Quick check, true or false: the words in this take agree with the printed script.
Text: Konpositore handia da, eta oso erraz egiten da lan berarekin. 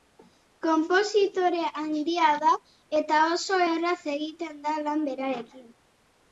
true